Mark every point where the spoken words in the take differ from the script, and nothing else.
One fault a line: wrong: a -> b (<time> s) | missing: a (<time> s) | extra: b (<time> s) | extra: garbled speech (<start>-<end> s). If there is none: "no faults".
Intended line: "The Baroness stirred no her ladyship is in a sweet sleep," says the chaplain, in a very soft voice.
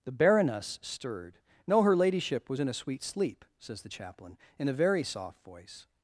wrong: is -> was (2.5 s)